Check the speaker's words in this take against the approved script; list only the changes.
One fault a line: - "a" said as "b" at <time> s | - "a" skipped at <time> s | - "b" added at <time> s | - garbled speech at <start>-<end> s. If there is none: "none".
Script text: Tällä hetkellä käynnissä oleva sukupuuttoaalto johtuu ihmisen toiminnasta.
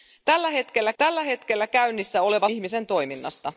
- "tällä hetkellä" added at 1.0 s
- "sukupuuttoaalto johtuu" skipped at 2.5 s